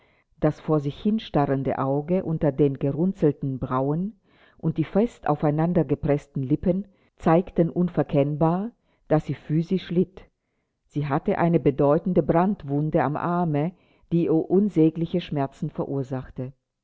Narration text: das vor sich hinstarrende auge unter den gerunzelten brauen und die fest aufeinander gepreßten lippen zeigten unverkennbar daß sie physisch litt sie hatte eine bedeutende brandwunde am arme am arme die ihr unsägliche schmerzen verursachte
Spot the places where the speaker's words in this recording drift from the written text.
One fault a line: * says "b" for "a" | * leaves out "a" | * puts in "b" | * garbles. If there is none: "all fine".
* leaves out "am arme"